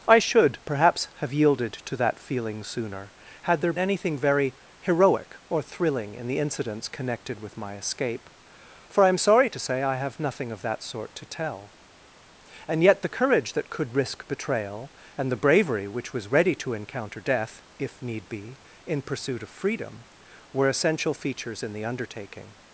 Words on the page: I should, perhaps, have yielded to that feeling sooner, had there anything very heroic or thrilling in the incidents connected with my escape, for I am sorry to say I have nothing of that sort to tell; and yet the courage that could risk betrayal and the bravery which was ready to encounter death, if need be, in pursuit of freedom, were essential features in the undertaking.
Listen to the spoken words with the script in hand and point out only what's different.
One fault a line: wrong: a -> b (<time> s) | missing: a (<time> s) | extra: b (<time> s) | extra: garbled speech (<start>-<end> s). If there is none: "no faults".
no faults